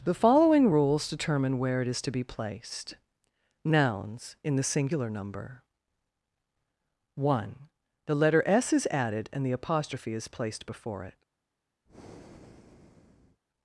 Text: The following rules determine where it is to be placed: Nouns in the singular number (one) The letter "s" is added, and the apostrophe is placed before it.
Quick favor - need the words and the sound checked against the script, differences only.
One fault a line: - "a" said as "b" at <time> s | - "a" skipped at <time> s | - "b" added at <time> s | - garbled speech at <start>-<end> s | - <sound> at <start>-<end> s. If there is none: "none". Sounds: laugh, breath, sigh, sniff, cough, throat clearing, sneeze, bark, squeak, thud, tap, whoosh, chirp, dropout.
- breath at 11.9-13.4 s